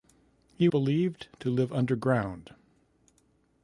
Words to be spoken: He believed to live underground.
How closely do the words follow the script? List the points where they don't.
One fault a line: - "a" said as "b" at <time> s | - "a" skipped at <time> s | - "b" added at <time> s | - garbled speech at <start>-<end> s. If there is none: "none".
none